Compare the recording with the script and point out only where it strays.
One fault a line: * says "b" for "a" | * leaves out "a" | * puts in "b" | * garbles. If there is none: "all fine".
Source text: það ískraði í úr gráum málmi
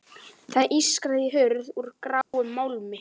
* puts in "hurð"